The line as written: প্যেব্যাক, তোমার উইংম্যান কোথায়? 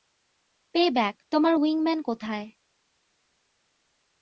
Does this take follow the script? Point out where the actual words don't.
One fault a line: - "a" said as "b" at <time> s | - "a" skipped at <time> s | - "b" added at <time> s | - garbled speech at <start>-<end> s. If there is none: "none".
none